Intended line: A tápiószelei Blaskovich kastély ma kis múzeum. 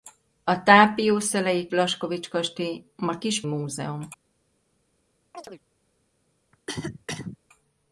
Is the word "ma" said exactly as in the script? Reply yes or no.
yes